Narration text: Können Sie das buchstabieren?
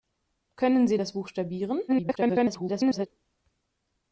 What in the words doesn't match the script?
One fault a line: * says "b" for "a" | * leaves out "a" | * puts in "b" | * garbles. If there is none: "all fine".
* garbles